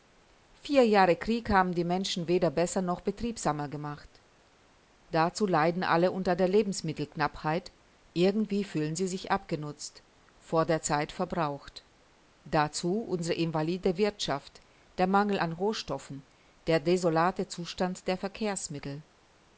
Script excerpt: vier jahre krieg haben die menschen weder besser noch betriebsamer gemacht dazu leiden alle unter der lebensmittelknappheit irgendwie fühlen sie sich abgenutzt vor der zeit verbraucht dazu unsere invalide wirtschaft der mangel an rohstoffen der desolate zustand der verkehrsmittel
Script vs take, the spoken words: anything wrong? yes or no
no